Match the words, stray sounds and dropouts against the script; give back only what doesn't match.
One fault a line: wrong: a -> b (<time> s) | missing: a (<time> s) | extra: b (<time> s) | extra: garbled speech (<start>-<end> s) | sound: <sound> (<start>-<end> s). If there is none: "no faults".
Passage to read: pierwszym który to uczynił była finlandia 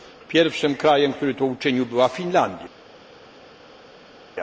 extra: krajem (0.8 s)